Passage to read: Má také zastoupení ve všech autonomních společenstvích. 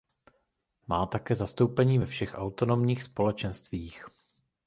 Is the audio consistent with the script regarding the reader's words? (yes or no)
yes